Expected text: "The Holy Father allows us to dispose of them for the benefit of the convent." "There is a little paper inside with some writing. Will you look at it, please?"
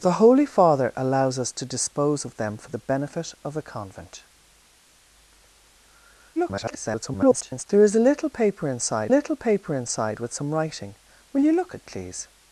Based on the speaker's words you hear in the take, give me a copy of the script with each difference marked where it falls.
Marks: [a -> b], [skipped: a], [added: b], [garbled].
"The Holy Father allows us to dispose of them for the benefit of the convent." [garbled] "There is a little paper inside [added: little paper inside] with some writing. Will you look [skipped: at] it, please?"